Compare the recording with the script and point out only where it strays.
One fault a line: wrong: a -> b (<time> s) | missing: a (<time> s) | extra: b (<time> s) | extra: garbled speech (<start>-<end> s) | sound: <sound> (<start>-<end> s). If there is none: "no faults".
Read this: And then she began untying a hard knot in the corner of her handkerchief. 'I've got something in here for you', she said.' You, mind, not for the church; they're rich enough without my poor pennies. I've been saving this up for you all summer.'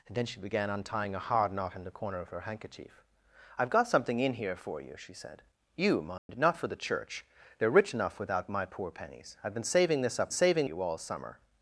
sound: dropout (6.2-6.3 s)
wrong: for -> saving (10.3 s)